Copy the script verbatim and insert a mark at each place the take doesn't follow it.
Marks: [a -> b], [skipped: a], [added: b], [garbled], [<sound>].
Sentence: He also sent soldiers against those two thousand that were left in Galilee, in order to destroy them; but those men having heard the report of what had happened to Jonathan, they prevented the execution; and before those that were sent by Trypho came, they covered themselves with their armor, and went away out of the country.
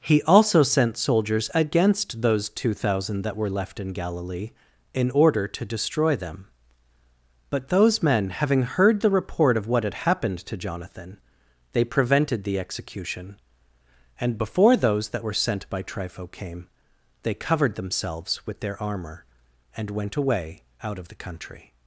He also sent soldiers against those two thousand that were left in Galilee, in order to destroy them; but those men having heard the report of what had happened to Jonathan, they prevented the execution; and before those that were sent by Trypho came, they covered themselves with their armor, and went away out of the country.